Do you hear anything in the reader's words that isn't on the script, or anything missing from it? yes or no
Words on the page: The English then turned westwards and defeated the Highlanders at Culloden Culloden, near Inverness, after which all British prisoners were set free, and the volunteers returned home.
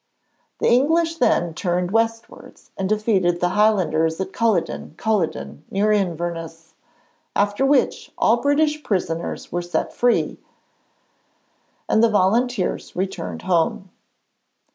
no